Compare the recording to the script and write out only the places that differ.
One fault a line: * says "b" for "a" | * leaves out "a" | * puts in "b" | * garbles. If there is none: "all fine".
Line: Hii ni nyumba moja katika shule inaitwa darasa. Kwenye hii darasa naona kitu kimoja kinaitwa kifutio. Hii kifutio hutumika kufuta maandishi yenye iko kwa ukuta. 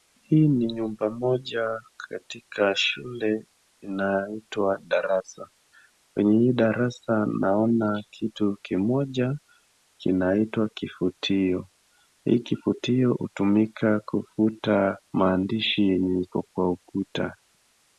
all fine